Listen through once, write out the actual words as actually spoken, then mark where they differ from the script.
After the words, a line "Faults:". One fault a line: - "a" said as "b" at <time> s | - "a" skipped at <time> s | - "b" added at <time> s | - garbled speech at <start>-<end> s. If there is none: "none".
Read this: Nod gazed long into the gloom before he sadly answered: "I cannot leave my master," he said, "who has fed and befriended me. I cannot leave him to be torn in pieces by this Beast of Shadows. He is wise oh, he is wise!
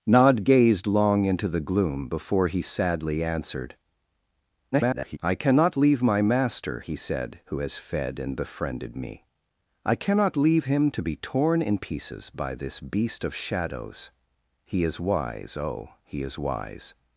Nod gazed long into the gloom before he sadly answered: [garbled] "I cannot leave my master," he said, "who has fed and befriended me. I cannot leave him to be torn in pieces by this Beast of Shadows. He is wise oh, he is wise!
Faults:
- garbled speech at 4.7-5.2 s